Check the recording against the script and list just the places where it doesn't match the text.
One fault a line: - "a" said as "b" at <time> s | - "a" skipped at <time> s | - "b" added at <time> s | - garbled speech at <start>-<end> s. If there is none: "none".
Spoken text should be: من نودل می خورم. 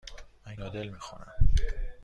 none